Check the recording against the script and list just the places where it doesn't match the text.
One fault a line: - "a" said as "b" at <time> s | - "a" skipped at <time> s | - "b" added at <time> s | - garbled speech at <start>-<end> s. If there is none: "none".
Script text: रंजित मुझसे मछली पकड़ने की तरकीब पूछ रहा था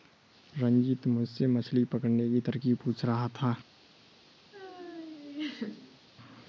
none